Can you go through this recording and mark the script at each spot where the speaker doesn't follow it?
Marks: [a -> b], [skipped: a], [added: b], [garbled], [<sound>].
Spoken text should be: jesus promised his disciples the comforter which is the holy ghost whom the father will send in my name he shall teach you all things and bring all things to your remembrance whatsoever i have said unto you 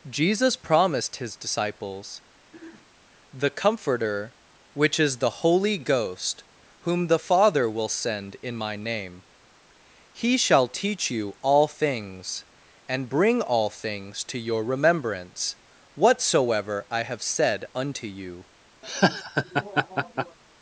jesus promised his disciples [throat clearing] the comforter which is the holy ghost whom the father will send in my name he shall teach you all things and bring all things to your remembrance whatsoever i have said unto you [laugh]